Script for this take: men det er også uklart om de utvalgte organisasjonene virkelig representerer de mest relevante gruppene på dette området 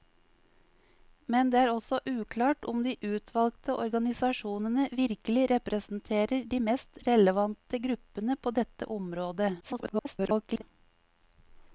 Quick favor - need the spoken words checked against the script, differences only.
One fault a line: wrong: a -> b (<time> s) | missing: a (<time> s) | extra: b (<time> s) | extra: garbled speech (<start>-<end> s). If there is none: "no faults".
extra: garbled speech (9.6-10.6 s)